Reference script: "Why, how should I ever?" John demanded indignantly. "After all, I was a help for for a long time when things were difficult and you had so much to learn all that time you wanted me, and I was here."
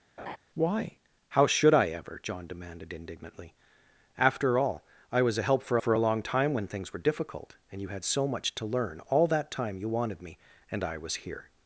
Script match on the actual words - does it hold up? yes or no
yes